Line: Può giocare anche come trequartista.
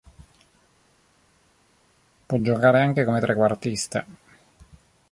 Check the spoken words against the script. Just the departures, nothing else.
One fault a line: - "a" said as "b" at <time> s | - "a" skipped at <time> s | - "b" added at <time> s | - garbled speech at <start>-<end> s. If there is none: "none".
none